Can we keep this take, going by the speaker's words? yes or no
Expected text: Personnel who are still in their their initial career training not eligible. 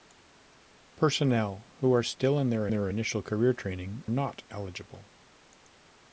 yes